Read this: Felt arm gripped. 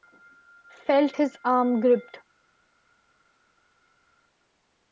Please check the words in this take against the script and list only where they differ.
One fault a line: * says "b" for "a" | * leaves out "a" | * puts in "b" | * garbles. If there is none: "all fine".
* puts in "his"